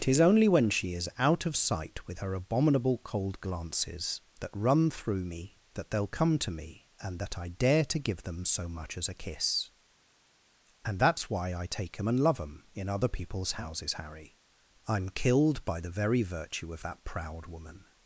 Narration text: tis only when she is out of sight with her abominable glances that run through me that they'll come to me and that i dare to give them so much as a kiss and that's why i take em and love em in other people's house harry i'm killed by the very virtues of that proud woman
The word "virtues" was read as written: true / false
false